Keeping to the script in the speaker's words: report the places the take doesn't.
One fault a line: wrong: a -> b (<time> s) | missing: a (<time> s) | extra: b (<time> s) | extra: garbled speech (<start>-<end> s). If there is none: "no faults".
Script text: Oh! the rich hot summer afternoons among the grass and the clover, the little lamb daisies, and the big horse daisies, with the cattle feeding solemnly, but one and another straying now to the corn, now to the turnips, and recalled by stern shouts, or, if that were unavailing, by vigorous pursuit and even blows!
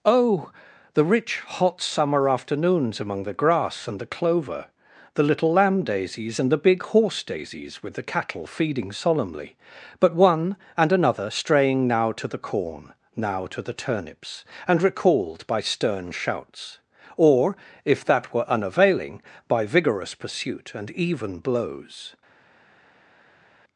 no faults